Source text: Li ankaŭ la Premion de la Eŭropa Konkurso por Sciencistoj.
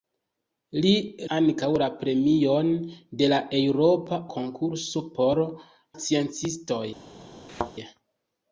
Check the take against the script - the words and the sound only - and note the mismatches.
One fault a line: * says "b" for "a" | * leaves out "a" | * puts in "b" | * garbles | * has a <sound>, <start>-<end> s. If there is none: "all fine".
* has a thud, 7.5-7.7 s